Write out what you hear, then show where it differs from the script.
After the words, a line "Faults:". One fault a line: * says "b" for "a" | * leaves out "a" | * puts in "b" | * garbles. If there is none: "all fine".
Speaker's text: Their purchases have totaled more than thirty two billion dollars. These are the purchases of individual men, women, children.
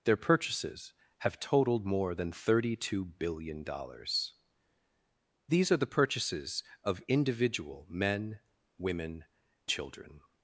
Their purchases have totaled more than thirty two billion dollars. These are the purchases of individual men, women, children.
Faults:
all fine